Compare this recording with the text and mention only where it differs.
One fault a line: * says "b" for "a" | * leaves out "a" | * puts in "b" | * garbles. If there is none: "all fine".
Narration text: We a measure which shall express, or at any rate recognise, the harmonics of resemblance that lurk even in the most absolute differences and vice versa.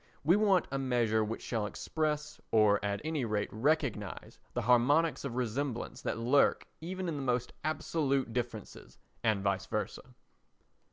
* puts in "want"